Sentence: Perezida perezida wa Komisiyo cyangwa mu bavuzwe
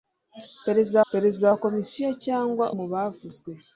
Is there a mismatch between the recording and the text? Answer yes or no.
no